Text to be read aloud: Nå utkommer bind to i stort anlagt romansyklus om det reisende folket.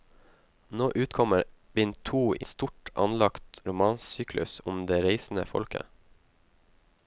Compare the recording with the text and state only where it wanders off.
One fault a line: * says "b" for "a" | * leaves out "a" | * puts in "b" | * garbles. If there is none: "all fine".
all fine